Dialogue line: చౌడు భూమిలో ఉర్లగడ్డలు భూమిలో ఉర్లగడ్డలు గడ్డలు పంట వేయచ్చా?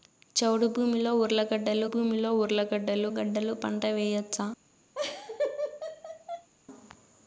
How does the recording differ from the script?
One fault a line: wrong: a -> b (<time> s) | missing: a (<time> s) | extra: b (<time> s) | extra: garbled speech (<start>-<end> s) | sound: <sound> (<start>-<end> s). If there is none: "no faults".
sound: laugh (4.9-6.5 s)